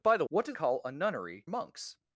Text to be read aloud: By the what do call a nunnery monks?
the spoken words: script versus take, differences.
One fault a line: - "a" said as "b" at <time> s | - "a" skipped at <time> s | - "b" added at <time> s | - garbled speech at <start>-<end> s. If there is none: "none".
none